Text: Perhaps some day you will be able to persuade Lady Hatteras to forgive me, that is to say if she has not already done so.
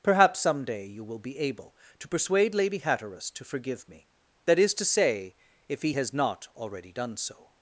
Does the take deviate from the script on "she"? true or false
true